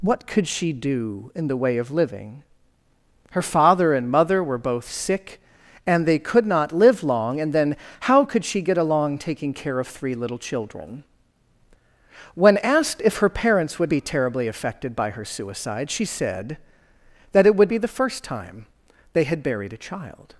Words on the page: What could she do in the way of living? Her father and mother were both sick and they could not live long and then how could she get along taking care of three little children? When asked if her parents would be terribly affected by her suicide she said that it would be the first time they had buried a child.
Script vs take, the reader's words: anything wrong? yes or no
no